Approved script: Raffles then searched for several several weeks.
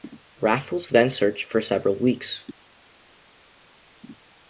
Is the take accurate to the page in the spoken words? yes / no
no